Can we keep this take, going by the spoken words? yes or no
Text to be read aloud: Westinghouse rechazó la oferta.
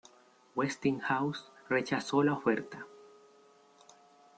yes